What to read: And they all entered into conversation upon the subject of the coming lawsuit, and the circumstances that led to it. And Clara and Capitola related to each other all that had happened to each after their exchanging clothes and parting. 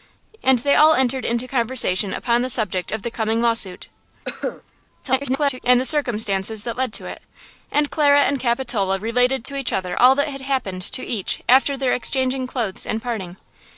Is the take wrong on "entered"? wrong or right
right